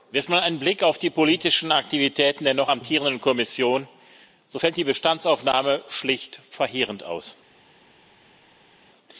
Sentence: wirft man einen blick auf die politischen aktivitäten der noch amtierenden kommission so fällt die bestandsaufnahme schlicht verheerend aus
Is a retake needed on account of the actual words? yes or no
no